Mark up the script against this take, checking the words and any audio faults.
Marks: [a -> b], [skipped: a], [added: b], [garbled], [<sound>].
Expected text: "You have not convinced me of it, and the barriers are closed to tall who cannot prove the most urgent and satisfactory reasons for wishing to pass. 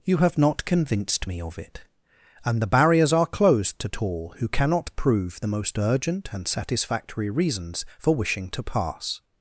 "You have not convinced me of it, and the barriers are closed to tall who cannot prove the most urgent and satisfactory reasons for wishing to pass.